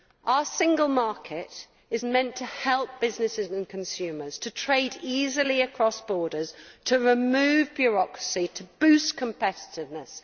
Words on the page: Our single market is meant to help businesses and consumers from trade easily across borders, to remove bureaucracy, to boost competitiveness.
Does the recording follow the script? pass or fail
fail